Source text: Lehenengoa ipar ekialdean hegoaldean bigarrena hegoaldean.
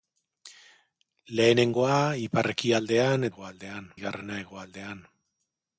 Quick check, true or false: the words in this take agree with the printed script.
true